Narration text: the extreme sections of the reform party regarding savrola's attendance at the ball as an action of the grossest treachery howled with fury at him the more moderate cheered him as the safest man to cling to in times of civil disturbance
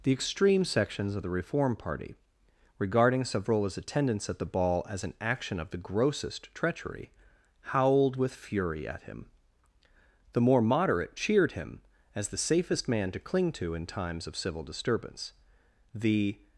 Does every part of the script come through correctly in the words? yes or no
no